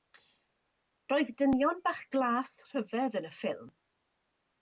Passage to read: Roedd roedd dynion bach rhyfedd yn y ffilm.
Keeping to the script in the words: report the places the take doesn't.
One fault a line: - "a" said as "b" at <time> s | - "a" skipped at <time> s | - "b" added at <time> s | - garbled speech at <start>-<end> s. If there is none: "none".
- "roedd" skipped at 1.3 s
- "glas" added at 2.1 s